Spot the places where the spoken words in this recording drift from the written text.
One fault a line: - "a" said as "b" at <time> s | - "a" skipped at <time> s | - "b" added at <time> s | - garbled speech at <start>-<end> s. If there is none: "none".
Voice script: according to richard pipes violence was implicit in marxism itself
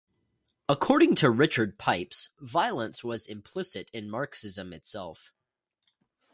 none